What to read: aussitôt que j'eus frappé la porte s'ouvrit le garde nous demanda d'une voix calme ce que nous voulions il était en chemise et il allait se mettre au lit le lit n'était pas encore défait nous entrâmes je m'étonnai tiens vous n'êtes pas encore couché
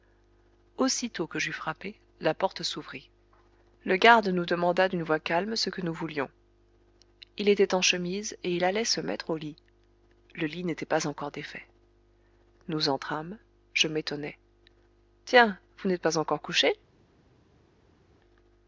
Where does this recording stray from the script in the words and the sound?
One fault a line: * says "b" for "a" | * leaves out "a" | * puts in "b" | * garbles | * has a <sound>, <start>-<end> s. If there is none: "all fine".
all fine